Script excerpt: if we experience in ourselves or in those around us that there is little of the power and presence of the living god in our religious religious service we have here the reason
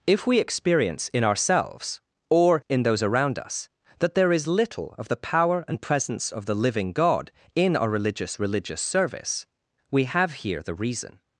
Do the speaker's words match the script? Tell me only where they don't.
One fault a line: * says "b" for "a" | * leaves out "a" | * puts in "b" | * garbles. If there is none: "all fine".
all fine